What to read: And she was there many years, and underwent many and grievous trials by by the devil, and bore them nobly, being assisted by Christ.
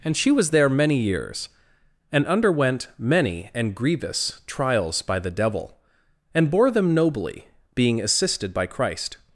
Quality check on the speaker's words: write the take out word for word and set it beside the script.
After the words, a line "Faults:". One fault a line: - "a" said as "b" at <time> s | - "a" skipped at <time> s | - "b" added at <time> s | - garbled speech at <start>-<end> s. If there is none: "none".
And she was there many years, and underwent many and grievous trials by the devil, and bore them nobly, being assisted by Christ.
Faults:
- "by" skipped at 5.2 s